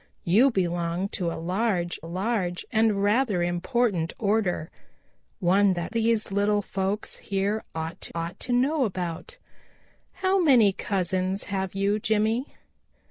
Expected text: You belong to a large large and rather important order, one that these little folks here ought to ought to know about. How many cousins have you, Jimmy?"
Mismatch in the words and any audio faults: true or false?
false